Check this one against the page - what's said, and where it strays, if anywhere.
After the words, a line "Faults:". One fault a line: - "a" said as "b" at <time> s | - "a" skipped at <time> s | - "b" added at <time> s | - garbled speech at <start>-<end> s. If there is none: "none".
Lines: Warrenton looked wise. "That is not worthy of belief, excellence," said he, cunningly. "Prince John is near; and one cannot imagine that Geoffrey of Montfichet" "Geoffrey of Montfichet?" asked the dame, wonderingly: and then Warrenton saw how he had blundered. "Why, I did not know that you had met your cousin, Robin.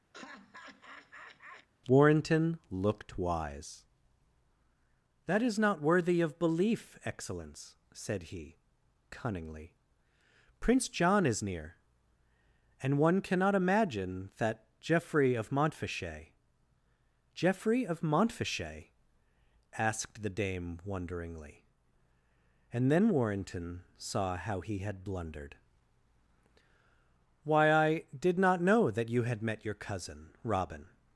Warrenton looked wise. "That is not worthy of belief, excellence," said he, cunningly. "Prince John is near; and one cannot imagine that Geoffrey of Montfichet" "Geoffrey of Montfichet?" asked the dame, wonderingly: and then Warrenton saw how he had blundered. "Why, I did not know that you had met your cousin, Robin.
Faults:
none